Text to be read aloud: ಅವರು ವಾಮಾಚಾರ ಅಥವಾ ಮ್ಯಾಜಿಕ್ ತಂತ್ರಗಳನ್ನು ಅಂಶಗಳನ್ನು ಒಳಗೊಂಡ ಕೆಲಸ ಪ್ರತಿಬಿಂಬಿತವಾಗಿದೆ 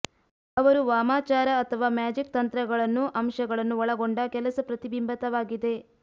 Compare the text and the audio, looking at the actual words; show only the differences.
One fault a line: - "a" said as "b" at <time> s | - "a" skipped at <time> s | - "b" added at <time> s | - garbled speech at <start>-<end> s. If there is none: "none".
none